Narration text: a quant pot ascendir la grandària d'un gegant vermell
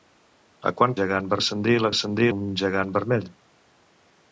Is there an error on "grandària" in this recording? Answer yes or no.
yes